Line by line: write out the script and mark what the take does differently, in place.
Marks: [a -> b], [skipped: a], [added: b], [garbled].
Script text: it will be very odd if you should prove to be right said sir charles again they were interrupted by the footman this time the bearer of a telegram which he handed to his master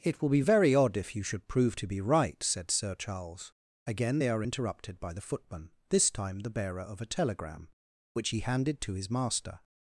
it will be very odd if you should prove to be right said sir charles again they [were -> are] interrupted by the footman this time the bearer of a telegram which he handed to his master